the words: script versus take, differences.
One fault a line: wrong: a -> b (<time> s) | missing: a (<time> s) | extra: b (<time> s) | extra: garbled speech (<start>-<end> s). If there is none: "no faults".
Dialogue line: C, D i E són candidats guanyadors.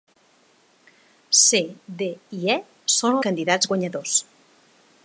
no faults